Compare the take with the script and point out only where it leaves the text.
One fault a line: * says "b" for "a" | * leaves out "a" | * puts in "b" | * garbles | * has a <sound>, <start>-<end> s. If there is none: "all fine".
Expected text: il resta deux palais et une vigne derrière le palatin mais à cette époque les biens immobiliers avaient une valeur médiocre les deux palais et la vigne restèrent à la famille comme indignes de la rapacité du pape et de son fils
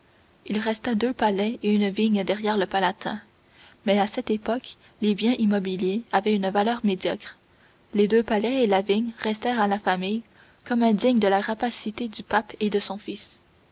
all fine